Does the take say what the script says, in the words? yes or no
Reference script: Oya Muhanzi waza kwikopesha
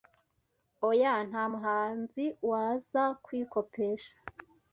no